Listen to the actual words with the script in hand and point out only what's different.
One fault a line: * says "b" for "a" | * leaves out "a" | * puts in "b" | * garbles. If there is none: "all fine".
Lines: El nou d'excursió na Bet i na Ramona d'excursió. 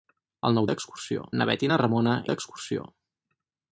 all fine